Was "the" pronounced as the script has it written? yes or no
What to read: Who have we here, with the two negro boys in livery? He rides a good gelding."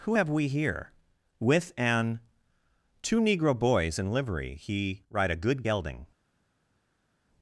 no